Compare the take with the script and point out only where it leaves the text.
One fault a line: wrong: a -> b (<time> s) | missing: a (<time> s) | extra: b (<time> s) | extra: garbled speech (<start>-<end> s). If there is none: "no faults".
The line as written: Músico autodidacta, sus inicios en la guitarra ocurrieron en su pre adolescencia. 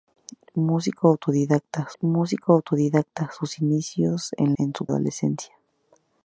extra: músico autodidacta (2.0 s)
missing: la guitarra ocurrieron (4.5 s)
missing: pre (4.9 s)